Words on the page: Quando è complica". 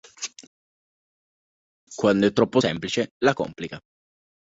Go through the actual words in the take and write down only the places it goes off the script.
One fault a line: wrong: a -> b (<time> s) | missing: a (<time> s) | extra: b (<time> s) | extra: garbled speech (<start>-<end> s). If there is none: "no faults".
extra: troppo semplice la (2.3 s)